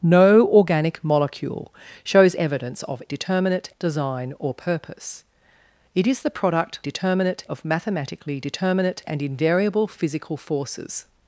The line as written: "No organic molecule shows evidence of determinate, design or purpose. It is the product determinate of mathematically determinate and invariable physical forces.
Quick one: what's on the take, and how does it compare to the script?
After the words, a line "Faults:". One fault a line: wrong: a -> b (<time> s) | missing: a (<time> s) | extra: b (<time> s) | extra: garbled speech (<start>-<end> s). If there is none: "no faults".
"No organic molecule shows evidence of determinate, design or purpose. It is the product determinate of mathematically determinate and invariable physical forces.
Faults:
no faults